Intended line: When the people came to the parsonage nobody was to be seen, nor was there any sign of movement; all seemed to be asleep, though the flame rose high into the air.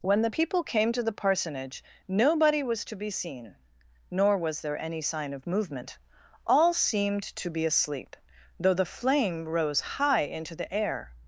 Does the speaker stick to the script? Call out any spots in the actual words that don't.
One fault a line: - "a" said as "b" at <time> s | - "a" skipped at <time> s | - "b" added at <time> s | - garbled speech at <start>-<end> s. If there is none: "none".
none